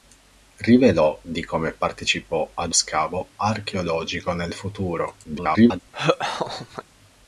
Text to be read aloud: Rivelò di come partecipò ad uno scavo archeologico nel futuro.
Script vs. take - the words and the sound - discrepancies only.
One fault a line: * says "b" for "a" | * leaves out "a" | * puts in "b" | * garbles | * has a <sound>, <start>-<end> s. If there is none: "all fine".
* leaves out "uno"
* garbles
* has a laugh, 5.9-6.8 s